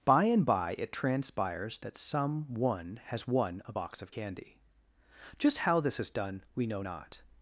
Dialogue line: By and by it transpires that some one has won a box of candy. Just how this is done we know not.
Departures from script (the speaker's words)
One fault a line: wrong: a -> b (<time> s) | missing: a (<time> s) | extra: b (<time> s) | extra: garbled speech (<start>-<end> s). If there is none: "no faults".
no faults